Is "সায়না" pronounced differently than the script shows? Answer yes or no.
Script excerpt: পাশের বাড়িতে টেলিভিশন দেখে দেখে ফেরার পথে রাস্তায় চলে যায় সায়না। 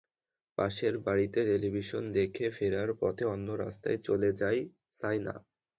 no